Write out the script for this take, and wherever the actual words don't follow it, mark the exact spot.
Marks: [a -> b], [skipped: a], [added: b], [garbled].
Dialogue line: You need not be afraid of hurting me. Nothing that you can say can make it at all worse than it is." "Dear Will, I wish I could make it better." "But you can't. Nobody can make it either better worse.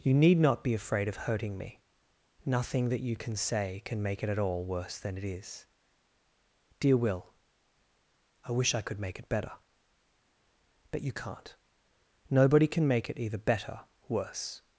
You need not be afraid of hurting me. Nothing that you can say can make it at all worse than it is." "Dear Will, I wish I could make it better." "But you can't. Nobody can make it either better worse.